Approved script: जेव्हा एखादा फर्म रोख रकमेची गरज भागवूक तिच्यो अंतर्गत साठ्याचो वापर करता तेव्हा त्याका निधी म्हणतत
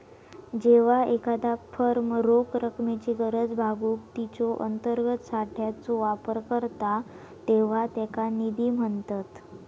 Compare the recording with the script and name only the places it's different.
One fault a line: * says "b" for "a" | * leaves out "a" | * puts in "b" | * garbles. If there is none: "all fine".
all fine